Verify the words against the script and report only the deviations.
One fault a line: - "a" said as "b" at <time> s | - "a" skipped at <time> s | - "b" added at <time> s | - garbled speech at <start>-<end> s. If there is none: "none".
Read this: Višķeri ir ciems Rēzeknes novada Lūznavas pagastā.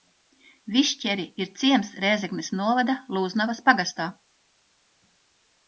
none